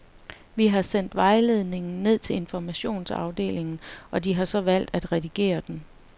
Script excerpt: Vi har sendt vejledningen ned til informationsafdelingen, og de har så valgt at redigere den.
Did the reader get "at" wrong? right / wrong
right